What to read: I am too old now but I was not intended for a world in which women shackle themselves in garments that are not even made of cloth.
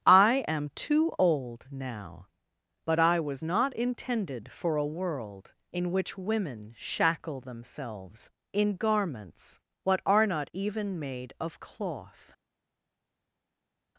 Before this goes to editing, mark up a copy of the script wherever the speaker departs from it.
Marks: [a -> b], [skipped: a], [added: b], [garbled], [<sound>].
I am too old now but I was not intended for a world in which women shackle themselves in garments [that -> what] are not even made of cloth.